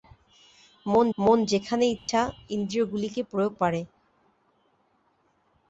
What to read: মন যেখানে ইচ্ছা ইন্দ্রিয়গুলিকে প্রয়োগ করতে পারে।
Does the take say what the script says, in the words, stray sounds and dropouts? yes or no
no